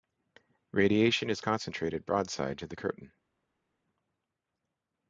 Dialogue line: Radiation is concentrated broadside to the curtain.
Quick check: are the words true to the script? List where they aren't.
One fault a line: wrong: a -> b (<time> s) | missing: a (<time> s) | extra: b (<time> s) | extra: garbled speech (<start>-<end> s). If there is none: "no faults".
no faults